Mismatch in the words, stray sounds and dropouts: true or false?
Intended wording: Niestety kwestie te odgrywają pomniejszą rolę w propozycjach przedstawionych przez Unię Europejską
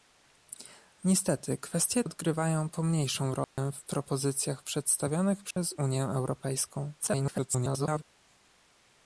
true